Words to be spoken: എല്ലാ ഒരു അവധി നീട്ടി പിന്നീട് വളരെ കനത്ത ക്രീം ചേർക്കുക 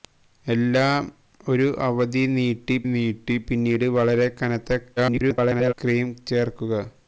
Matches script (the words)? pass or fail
fail